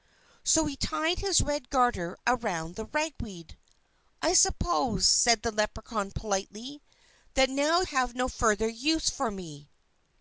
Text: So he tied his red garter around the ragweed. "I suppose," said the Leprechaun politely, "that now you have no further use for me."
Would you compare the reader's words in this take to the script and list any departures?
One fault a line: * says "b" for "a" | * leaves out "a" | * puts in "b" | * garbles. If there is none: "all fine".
* leaves out "you"